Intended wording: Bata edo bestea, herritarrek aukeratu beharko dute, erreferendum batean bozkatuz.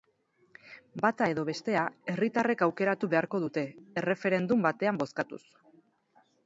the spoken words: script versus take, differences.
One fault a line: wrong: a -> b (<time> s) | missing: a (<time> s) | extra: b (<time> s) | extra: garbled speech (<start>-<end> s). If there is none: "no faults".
no faults